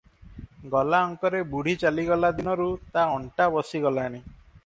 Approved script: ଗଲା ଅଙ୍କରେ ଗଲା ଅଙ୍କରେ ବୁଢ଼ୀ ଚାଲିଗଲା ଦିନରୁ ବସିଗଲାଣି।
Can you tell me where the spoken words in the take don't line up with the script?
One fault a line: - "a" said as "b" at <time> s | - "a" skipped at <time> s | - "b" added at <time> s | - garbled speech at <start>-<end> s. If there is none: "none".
- "ଗଲା ଅଙ୍କରେ" skipped at 1.4 s
- "ତା ଅଣ୍ଟା" added at 2.9 s